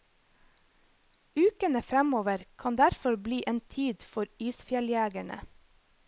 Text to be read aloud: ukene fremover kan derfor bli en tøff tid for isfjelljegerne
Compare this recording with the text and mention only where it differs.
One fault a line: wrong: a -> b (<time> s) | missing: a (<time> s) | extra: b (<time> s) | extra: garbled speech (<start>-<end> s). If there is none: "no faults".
missing: tøff (3.6 s)